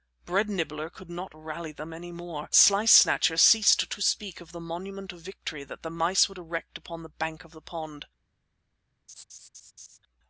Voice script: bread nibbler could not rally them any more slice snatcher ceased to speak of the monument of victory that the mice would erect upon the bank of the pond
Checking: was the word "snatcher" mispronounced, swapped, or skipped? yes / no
no